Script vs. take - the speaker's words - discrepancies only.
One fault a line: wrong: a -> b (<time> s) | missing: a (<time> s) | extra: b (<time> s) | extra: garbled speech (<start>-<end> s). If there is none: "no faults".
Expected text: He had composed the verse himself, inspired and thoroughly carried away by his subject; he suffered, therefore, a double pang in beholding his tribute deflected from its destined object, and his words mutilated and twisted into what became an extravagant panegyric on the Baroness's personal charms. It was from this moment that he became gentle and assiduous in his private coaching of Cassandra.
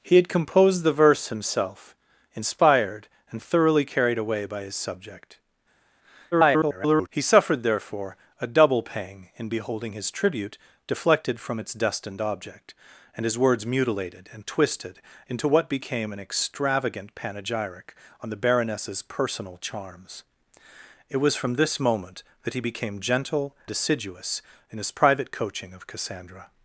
extra: garbled speech (6.3-7.1 s)
missing: and (23.6 s)